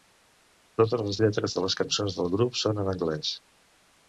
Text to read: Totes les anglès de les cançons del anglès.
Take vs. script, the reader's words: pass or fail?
fail